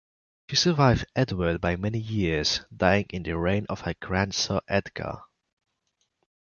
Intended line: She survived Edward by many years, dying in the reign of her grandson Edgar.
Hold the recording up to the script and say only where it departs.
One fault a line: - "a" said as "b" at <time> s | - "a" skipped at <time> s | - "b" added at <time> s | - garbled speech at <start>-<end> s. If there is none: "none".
none